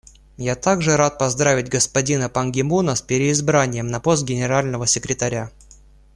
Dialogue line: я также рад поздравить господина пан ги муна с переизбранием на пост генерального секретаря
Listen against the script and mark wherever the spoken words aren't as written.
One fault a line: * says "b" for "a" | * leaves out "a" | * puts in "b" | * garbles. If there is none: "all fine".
all fine